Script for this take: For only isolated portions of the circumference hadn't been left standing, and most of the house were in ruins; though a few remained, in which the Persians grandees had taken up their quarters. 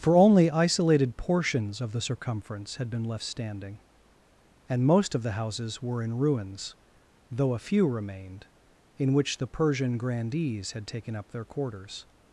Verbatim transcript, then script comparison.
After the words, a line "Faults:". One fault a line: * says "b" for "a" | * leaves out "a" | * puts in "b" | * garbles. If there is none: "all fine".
For only isolated portions of the circumference had been left standing, and most of the houses were in ruins; though a few remained, in which the Persian grandees had taken up their quarters.
Faults:
* says "had" for "hadn't"
* says "houses" for "house"
* says "Persian" for "Persians"